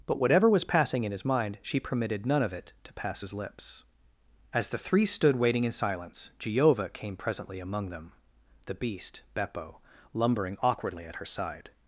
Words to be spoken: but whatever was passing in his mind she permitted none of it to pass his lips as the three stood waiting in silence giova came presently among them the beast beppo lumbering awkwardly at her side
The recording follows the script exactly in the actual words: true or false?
true